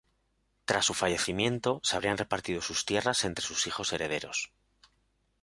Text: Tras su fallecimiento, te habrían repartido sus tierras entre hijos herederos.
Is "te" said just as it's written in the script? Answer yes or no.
no